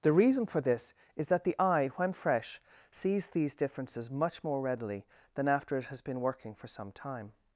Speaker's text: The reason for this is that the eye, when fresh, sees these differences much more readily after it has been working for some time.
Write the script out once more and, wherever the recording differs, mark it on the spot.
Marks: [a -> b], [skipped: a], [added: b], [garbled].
The reason for this is that the eye, when fresh, sees these differences much more readily [added: than] after it has been working for some time.